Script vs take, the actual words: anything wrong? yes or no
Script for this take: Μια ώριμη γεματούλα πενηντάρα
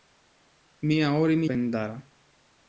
yes